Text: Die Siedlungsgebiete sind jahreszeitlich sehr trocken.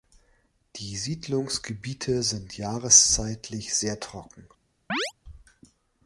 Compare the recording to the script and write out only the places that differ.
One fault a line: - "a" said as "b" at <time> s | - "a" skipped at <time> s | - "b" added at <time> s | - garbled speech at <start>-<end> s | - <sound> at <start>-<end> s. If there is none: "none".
- chirp at 4.9-5.1 s